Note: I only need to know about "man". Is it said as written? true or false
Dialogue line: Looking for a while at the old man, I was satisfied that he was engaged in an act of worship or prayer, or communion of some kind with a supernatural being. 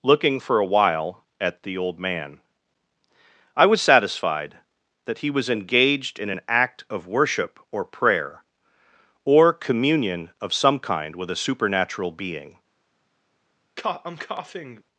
true